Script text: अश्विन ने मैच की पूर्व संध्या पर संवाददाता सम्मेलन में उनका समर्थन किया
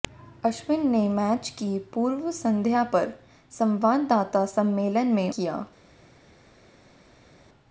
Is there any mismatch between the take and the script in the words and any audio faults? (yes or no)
yes